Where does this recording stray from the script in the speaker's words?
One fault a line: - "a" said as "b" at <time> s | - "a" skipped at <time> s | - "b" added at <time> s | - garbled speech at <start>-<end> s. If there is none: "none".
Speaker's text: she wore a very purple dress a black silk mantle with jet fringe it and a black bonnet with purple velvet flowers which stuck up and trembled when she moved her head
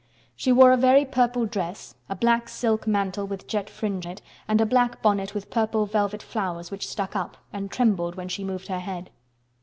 none